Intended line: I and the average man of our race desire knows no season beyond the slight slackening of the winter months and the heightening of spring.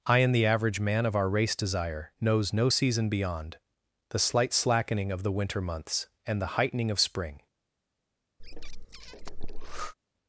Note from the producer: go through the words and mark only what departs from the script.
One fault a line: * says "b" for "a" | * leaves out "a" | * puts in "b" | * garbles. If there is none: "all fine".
all fine